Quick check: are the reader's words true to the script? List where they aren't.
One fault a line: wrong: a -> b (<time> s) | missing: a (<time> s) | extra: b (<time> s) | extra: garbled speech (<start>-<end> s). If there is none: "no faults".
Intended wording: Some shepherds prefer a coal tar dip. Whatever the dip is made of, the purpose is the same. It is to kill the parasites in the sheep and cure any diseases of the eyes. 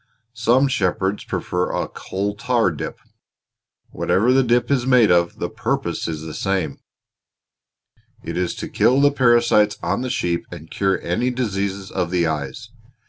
wrong: in -> on (9.8 s)